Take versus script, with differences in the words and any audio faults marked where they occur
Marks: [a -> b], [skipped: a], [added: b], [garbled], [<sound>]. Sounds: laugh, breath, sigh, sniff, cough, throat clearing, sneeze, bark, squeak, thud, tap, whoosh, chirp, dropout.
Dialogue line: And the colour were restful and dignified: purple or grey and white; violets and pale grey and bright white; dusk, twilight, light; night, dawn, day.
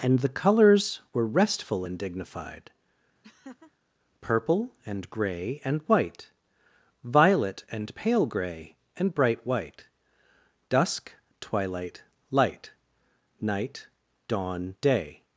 And the [colour -> colours] were restful and dignified: [laugh] purple [or -> and] grey and white; [violets -> violet] and pale grey and bright white; dusk, twilight, light; night, dawn, day.